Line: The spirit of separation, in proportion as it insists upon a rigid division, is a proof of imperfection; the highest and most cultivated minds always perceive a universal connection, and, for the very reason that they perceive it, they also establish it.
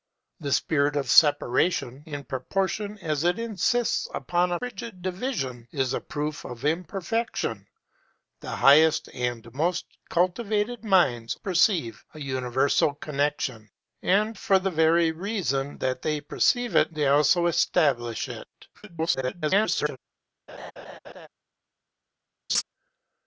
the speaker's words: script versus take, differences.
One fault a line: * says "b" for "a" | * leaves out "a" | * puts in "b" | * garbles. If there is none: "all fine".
* leaves out "always"
* garbles